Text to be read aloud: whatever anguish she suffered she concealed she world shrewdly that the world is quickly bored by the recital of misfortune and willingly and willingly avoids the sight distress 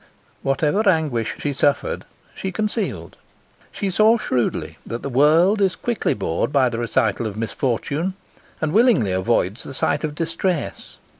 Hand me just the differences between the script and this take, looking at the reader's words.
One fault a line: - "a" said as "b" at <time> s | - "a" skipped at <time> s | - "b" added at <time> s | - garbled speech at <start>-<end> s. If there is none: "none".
- "world" said as "saw" at 3.9 s
- "and willingly" skipped at 9.1 s
- "of" added at 10.0 s